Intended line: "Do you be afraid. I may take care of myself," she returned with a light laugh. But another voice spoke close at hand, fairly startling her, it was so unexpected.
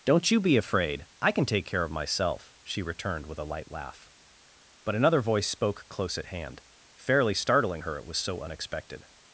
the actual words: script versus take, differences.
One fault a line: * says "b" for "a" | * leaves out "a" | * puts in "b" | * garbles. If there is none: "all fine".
* says "Don't" for "Do"
* says "can" for "may"